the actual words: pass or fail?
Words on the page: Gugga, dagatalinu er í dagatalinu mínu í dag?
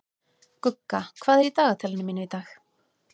fail